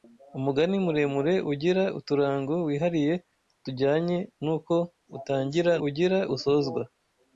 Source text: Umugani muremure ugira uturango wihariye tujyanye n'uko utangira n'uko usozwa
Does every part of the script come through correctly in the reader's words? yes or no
no